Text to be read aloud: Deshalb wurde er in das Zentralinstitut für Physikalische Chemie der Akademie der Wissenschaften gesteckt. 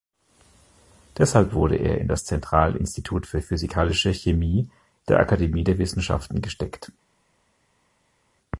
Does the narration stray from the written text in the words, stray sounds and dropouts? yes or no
no